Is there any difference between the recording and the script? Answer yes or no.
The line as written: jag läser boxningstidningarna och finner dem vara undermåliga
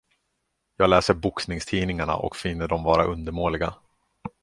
no